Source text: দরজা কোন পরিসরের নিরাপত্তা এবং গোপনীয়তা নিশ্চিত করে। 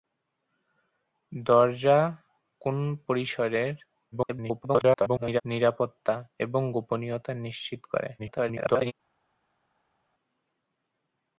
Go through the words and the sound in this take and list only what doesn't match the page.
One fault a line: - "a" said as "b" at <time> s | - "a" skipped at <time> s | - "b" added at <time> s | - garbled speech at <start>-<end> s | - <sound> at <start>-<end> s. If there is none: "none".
- garbled speech at 4.1-5.4 s
- garbled speech at 8.2-8.9 s